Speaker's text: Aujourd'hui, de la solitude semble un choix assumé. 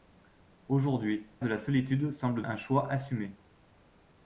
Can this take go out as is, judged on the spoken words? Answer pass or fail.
pass